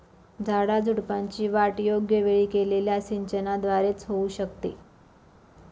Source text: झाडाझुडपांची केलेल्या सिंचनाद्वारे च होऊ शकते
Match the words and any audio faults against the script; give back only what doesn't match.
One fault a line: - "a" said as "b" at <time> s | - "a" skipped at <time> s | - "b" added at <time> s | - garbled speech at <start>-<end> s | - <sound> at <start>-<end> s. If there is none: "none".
- "वाढ योग्य वेळी" added at 1.5 s